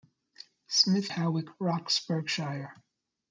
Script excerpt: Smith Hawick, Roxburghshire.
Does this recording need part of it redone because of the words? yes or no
no